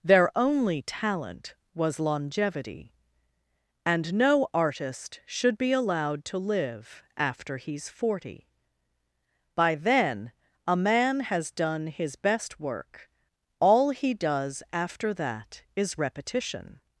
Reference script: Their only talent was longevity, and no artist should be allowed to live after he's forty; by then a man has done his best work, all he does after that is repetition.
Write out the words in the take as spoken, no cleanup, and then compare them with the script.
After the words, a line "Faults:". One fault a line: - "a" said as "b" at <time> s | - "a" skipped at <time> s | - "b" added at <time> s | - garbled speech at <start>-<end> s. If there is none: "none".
Their only talent was longevity, and no artist should be allowed to live after he's forty; by then a man has done his best work, all he does after that is repetition.
Faults:
none